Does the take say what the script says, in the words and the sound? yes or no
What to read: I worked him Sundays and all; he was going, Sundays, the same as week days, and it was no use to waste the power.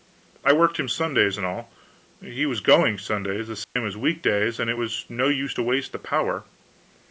no